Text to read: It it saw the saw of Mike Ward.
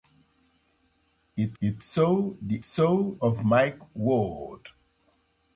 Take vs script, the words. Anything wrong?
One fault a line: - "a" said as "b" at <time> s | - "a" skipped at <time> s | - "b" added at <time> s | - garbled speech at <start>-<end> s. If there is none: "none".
none